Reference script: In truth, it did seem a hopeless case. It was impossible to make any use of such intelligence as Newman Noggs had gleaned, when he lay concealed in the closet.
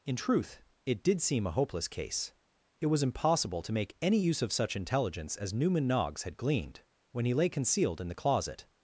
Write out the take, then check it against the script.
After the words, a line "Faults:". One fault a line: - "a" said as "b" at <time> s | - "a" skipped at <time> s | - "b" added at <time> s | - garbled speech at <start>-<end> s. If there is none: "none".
In truth, it did seem a hopeless case. It was impossible to make any use of such intelligence as Newman Noggs had gleaned, when he lay concealed in the closet.
Faults:
none